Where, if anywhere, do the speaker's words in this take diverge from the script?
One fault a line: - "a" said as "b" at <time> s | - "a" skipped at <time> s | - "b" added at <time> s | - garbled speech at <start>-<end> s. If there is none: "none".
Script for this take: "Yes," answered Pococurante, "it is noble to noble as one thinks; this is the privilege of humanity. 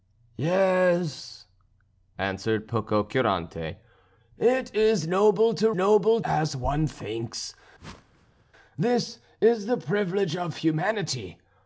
none